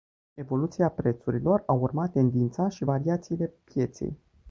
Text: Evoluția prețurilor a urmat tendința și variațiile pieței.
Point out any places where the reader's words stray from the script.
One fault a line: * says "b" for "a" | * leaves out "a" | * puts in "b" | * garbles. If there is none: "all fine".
all fine